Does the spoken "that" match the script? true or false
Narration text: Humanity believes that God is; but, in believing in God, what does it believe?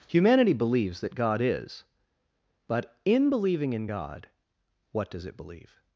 true